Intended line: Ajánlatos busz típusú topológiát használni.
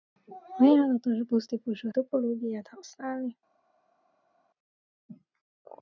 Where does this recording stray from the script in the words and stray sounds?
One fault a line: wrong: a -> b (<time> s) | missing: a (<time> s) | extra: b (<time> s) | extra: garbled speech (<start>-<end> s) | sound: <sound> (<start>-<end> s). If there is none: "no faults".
no faults